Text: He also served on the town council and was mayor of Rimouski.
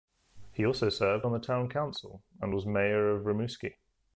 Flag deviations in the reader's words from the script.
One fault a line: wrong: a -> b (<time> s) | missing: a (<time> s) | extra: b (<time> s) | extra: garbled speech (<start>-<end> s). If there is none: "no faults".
no faults